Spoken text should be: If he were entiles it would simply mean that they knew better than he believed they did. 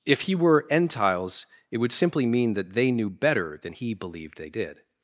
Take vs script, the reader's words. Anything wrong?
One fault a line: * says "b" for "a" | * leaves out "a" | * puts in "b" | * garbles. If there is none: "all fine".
all fine